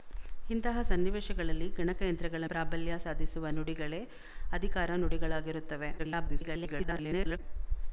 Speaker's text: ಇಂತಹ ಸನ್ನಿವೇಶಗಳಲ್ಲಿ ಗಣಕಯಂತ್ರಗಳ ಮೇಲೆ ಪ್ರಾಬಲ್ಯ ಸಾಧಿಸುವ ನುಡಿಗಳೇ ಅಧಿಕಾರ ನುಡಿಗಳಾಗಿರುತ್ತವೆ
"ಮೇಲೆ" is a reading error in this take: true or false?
true